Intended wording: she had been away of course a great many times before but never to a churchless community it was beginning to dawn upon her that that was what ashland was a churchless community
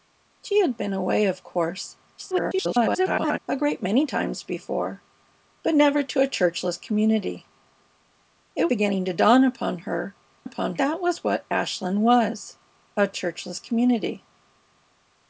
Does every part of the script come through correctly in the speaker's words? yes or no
no